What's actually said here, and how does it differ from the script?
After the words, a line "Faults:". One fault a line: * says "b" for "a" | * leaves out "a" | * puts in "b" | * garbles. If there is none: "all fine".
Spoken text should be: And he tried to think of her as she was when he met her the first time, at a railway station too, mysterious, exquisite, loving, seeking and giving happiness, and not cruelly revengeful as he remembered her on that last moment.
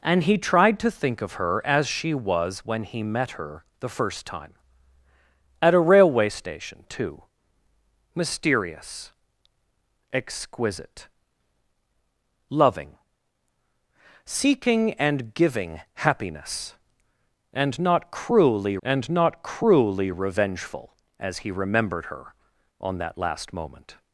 And he tried to think of her as she was when he met her the first time, at a railway station too, mysterious, exquisite, loving, seeking and giving happiness, and not cruelly and not cruelly revengeful as he remembered her on that last moment.
Faults:
* puts in "and not cruelly"